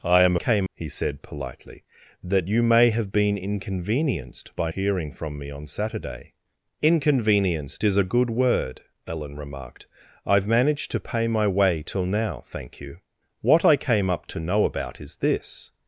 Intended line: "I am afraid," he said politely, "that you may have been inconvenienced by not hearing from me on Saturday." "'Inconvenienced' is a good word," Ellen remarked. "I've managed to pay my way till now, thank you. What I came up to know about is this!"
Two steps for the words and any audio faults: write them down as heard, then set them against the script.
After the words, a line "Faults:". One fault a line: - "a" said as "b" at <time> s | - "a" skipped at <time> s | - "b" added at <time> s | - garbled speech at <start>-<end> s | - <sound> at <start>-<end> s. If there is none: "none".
"I am came," he said politely, "that you may have been inconvenienced by hearing from me on Saturday." "'Inconvenienced' is a good word," Ellen remarked. "I've managed to pay my way till now, thank you. What I came up to know about is this!"
Faults:
- "afraid" said as "came" at 0.4 s
- "not" skipped at 4.7 s